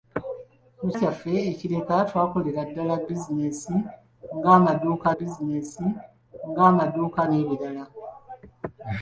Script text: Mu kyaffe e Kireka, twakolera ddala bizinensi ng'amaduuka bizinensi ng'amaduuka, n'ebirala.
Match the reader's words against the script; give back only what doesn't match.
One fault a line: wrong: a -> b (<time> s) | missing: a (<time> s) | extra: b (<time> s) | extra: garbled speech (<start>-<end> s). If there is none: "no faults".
no faults